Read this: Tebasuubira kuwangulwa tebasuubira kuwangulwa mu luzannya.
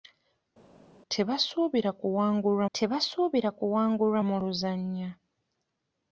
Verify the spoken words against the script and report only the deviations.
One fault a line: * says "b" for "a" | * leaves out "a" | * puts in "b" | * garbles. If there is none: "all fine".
all fine